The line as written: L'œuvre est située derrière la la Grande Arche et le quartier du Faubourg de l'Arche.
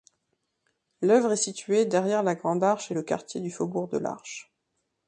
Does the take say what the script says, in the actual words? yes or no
no